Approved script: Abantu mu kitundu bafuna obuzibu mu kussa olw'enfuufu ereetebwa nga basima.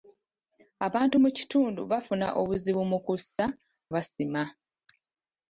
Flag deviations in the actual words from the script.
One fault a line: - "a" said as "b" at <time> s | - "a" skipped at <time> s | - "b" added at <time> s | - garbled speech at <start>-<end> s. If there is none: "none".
- "olw'enfuufu ereetebwa nga" skipped at 3.4 s